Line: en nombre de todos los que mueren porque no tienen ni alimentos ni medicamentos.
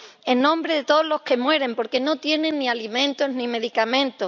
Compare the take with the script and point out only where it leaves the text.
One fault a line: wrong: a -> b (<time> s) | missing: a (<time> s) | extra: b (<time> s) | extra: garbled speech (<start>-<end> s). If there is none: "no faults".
no faults